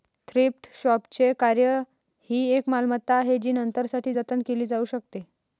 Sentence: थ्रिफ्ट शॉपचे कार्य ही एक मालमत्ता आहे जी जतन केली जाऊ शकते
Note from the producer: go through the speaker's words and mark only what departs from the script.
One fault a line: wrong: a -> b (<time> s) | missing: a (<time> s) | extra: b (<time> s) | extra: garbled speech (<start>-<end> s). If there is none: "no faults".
extra: नंतरसाठी (3.5 s)